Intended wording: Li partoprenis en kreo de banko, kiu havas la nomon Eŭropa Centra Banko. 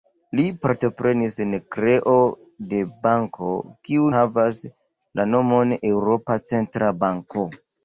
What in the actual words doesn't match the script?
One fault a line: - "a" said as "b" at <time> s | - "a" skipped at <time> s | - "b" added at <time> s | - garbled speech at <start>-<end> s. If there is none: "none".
none